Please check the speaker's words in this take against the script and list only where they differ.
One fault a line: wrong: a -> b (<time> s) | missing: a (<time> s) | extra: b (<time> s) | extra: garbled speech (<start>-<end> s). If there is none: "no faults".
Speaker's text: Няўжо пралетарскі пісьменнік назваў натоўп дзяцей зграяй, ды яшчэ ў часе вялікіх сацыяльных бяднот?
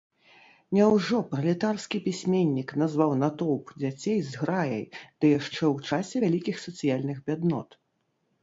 no faults